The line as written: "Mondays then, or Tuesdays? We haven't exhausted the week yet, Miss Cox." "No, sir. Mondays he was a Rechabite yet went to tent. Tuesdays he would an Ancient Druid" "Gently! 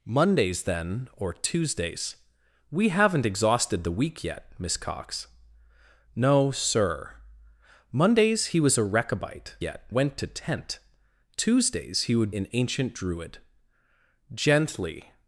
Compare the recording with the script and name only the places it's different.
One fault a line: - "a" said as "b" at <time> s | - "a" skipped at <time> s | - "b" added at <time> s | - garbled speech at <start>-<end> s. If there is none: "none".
none